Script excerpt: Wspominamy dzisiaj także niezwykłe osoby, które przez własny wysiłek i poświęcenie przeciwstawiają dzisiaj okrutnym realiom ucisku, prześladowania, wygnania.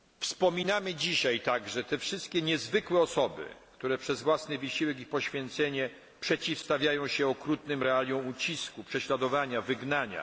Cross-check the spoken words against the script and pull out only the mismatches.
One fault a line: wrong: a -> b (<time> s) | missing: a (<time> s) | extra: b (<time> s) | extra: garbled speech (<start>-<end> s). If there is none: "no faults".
extra: te wszystkie (1.8 s)
wrong: dzisiaj -> się (7.1 s)